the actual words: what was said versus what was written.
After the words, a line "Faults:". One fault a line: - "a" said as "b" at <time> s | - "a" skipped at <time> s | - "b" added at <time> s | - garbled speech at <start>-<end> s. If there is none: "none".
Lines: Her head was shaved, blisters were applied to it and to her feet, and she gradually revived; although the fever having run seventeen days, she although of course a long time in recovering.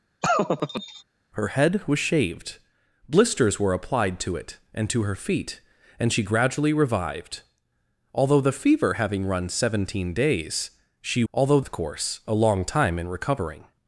Her head was shaved, blisters were applied to it and to her feet, and she gradually revived; although the fever having run seventeen days, she although of course a long time in recovering.
Faults:
none